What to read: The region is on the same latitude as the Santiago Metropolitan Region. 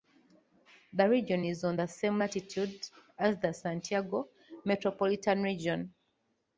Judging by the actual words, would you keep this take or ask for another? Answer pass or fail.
pass